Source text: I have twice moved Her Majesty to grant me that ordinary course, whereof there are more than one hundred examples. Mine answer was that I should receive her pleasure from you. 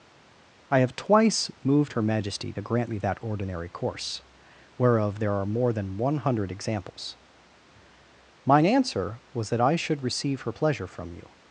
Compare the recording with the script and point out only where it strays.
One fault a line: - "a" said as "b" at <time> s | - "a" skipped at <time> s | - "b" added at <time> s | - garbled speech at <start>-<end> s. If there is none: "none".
none